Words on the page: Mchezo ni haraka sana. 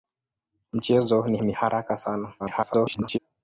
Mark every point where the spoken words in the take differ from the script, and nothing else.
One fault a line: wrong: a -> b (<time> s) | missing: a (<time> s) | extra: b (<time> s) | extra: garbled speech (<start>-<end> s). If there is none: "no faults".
extra: ni (1.4 s)
extra: garbled speech (2.4-3.2 s)